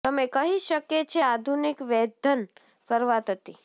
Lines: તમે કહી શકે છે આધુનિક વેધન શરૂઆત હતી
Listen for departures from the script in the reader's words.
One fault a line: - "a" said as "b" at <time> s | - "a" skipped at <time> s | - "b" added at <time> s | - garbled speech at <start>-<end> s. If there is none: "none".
none